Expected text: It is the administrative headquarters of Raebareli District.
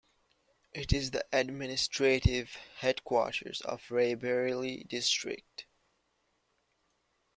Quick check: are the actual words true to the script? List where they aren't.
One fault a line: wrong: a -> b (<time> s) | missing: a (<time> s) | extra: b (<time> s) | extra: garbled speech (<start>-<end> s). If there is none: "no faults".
no faults